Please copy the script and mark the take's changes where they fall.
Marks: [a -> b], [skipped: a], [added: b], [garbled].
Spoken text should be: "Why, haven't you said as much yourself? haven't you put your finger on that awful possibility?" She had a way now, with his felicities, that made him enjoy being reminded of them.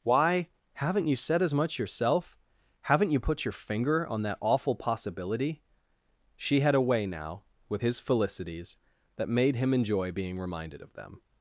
"Why, haven't you said as much yourself? haven't you put your finger on that awful possibility?" She had a way now, with his felicities, that made him enjoy being reminded of them.